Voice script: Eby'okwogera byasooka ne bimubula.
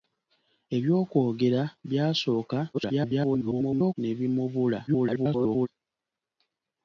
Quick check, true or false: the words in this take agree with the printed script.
false